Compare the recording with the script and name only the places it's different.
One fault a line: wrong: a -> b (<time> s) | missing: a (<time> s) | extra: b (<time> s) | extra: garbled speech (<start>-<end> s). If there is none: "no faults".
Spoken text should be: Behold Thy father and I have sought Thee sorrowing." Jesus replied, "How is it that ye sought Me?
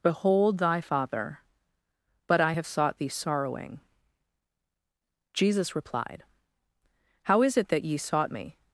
wrong: and -> but (2.3 s)